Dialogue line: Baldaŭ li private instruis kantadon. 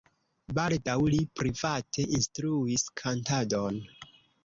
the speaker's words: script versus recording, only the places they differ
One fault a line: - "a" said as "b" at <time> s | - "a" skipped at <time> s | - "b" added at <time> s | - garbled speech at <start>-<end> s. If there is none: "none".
none